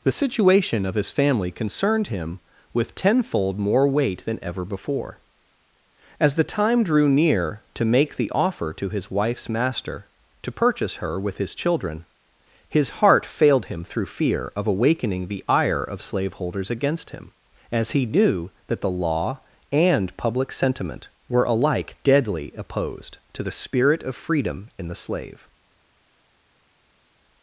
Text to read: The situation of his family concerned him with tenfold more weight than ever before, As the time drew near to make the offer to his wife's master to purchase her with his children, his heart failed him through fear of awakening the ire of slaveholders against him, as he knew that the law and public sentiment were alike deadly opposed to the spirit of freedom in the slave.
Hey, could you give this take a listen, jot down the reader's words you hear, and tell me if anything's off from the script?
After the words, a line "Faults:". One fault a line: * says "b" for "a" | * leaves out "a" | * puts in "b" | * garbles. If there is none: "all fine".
The situation of his family concerned him with tenfold more weight than ever before, As the time drew near to make the offer to his wife's master to purchase her with his children, his heart failed him through fear of awakening the ire of slaveholders against him, as he knew that the law and public sentiment were alike deadly opposed to the spirit of freedom in the slave.
Faults:
all fine